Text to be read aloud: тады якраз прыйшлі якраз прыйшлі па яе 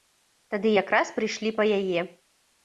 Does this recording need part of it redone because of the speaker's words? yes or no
yes